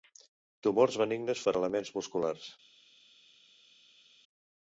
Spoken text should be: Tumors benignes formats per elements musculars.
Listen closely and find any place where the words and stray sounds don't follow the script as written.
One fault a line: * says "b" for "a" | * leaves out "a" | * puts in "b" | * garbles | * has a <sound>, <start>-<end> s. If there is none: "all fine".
* leaves out "formats"